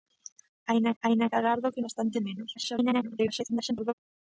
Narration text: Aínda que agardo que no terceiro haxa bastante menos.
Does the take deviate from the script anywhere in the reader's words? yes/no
yes